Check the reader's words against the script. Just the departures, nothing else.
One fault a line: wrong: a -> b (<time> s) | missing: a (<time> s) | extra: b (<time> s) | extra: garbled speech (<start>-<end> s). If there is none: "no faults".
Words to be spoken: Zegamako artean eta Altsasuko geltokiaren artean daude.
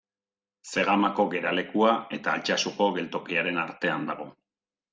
wrong: artean -> geralekua (1.3 s)
wrong: daude -> dago (4.1 s)